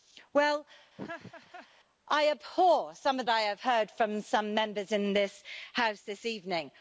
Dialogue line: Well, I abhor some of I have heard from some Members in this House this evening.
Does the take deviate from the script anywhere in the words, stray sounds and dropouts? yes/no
yes